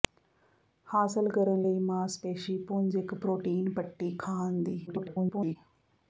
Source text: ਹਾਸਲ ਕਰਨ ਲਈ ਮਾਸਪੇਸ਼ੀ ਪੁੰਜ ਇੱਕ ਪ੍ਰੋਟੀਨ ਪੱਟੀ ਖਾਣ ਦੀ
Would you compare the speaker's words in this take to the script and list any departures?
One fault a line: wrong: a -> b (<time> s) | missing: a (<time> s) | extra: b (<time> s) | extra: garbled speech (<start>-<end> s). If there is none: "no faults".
extra: garbled speech (4.9-5.6 s)